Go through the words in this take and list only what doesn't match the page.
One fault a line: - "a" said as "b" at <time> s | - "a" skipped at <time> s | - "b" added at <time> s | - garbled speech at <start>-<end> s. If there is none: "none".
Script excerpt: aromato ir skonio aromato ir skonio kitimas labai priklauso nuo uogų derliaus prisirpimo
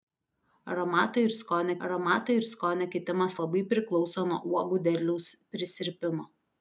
none